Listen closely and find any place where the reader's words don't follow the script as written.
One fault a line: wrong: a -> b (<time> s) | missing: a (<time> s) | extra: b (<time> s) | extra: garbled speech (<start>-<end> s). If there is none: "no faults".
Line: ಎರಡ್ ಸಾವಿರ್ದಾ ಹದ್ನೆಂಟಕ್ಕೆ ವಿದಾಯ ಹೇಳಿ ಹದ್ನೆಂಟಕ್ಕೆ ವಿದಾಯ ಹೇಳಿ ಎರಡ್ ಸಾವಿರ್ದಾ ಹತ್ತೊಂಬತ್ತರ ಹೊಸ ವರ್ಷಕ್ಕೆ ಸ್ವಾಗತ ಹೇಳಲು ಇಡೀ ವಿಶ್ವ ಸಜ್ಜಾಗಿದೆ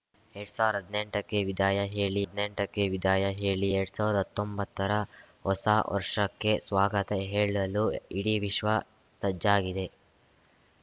no faults